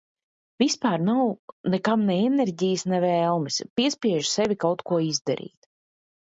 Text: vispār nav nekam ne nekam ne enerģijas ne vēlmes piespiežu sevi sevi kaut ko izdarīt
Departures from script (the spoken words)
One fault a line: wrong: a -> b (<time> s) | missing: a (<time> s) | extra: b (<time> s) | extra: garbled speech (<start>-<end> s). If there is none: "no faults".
missing: nekam ne (2.2 s)
missing: sevi (4.6 s)